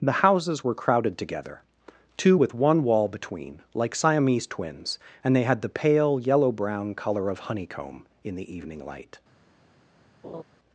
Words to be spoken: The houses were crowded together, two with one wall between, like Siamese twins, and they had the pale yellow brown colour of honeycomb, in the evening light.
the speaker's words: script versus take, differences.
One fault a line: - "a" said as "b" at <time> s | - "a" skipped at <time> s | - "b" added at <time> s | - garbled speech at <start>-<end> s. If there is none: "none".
none